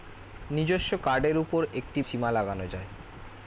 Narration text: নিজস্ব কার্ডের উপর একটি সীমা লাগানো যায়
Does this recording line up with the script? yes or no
yes